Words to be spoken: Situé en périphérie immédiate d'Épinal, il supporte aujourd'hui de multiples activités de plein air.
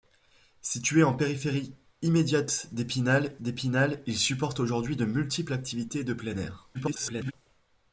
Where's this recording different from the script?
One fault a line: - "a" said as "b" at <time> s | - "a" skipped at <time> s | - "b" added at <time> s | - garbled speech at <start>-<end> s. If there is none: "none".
- "d'Épinal" added at 3.4 s
- garbled speech at 6.7-7.3 s